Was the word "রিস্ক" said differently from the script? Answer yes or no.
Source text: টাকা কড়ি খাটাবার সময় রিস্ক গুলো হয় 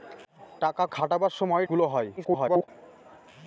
yes